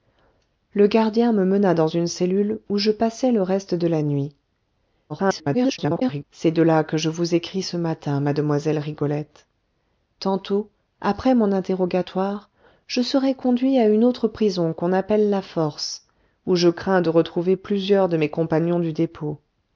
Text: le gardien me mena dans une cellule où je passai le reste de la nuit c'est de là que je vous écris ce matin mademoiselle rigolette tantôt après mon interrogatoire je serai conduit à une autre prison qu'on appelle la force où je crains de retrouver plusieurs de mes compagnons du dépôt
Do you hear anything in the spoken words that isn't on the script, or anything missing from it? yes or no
yes